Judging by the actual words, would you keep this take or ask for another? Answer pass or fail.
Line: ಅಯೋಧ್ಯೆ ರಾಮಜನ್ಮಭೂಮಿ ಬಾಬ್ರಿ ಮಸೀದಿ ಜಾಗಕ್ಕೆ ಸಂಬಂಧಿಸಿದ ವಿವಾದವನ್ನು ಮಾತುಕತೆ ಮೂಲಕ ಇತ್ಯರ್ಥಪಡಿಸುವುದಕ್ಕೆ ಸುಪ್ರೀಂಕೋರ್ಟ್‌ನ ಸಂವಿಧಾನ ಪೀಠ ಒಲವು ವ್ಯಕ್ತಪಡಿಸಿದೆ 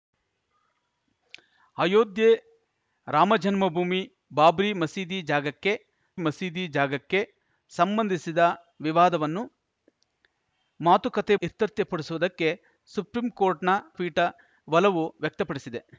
fail